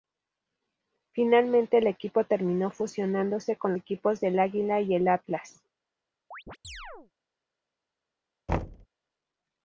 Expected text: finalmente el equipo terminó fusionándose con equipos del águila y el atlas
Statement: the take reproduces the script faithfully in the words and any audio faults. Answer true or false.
false